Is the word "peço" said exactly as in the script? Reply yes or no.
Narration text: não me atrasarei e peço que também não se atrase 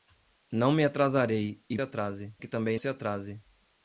no